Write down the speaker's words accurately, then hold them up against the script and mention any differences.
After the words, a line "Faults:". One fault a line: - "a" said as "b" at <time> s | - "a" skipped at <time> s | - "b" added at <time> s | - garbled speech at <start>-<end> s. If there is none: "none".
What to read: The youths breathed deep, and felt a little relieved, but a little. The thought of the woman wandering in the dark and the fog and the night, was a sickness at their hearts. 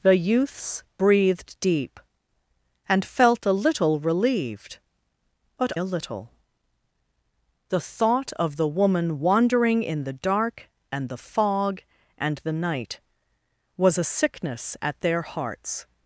The youths breathed deep, and felt a little relieved, but a little. The thought of the woman wandering in the dark and the fog and the night, was a sickness at their hearts.
Faults:
none